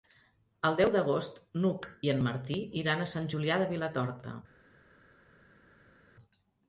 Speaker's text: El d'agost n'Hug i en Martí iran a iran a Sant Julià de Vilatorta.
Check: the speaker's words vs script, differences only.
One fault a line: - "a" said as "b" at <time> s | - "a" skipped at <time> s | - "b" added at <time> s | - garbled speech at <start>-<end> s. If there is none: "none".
- "deu" added at 0.8 s
- "iran a" skipped at 3.1 s